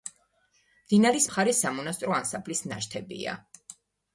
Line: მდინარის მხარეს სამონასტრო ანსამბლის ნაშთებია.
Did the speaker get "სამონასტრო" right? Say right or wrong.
right